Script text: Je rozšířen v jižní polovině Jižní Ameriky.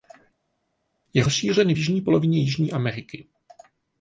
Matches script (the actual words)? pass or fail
pass